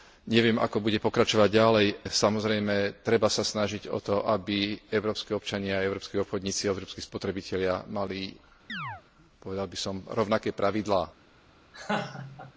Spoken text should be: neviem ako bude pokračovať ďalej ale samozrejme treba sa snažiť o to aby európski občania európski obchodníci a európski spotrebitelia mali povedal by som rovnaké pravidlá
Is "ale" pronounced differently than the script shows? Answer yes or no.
yes